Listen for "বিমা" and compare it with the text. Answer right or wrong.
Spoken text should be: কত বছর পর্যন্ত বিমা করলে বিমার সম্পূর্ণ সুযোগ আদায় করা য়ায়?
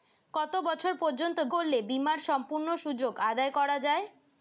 wrong